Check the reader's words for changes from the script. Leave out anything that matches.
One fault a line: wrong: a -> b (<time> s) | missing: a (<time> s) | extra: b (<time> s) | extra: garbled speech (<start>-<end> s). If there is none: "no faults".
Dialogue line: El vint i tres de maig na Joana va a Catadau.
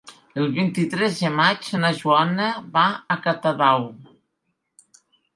no faults